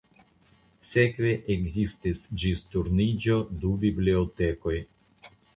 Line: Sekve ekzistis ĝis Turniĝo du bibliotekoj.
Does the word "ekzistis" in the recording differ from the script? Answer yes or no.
no